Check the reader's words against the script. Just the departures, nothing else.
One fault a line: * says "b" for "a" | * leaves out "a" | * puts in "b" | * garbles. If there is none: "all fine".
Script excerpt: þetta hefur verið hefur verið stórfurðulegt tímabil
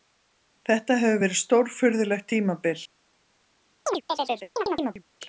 * leaves out "hefur verið"